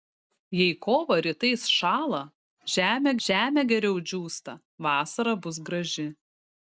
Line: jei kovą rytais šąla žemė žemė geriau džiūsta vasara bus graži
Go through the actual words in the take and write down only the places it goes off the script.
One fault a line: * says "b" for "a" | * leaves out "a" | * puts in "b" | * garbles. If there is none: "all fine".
all fine